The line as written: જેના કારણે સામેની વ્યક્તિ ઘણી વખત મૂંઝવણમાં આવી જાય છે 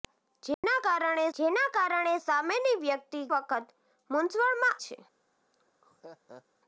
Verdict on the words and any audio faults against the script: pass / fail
fail